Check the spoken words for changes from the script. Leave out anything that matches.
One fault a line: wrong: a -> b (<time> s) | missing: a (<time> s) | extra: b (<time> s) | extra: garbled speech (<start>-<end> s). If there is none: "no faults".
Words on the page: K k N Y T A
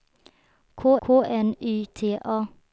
no faults